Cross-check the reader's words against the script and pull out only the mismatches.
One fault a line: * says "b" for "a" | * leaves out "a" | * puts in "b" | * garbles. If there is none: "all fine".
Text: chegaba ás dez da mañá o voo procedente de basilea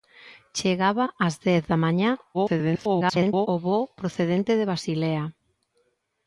* garbles